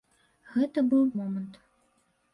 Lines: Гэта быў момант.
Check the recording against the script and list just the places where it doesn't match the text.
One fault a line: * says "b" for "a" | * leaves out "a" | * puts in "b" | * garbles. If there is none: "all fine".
all fine